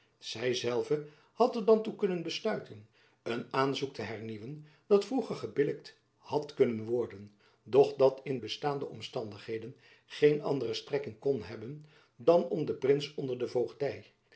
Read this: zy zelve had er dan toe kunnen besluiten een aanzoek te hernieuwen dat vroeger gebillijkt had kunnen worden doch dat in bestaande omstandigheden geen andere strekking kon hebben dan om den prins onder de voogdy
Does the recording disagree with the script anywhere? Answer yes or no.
no